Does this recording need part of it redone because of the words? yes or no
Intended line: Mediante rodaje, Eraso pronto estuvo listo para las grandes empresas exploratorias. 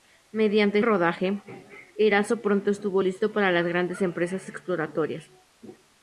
no